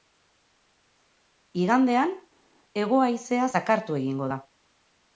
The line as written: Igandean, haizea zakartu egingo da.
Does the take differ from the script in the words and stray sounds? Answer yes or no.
yes